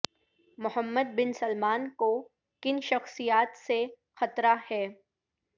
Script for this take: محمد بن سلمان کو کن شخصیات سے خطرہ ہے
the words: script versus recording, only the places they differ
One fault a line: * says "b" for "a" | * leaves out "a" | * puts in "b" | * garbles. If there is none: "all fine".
all fine